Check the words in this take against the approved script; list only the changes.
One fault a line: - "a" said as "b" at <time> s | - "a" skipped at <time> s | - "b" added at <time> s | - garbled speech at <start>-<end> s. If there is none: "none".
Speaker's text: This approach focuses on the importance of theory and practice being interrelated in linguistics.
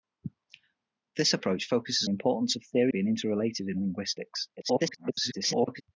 - "on" skipped at 2.1 s
- "and practice" skipped at 2.9 s
- garbled speech at 4.6-5.8 s